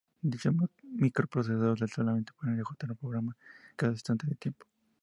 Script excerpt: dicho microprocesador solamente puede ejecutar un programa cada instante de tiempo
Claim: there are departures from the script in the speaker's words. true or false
false